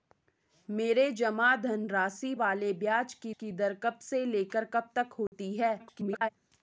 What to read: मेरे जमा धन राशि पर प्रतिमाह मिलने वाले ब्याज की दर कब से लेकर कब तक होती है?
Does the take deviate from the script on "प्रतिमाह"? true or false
true